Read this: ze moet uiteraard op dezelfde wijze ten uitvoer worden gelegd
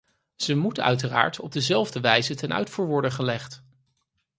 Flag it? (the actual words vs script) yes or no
no